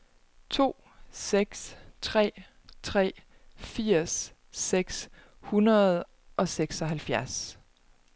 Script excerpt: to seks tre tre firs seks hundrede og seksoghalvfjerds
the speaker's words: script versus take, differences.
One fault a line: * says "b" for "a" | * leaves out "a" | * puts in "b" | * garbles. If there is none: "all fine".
all fine